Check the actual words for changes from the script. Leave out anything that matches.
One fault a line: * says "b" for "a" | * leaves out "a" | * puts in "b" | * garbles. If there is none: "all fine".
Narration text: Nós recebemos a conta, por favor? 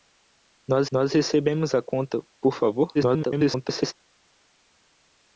* puts in "nós"
* garbles